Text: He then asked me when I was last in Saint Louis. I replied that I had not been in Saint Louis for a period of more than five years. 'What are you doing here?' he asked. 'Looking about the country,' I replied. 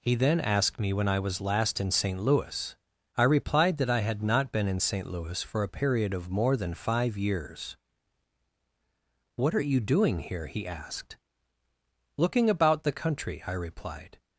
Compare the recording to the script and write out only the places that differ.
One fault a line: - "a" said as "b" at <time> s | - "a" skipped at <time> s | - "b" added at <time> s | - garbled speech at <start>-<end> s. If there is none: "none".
none